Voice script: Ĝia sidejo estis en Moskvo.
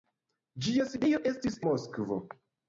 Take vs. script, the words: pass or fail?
fail